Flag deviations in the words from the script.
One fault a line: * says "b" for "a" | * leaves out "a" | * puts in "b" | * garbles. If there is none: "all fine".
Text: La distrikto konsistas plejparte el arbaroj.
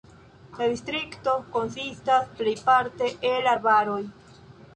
all fine